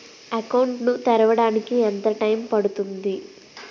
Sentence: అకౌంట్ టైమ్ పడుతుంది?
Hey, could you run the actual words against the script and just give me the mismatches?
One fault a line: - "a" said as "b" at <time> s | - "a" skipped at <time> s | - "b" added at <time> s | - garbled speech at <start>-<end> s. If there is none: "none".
- "ను తెరవడానికి ఎంత" added at 0.8 s